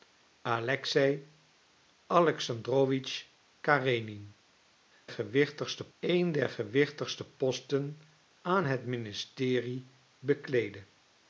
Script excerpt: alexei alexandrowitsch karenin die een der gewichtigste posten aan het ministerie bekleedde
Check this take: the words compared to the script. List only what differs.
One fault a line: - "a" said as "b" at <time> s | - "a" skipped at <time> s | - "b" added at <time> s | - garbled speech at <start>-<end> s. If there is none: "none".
- "die" said as "gewichtigste" at 5.1 s